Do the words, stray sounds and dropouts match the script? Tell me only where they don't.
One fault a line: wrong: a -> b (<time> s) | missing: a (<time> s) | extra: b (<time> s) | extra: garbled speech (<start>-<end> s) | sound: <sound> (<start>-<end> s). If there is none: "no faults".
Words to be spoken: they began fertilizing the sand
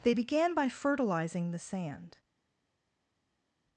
extra: by (0.5 s)